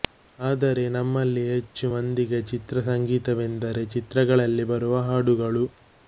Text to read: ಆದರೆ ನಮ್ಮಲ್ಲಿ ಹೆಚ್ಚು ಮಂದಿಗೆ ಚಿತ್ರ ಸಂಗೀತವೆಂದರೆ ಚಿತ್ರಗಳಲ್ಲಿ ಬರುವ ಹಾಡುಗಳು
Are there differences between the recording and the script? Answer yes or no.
no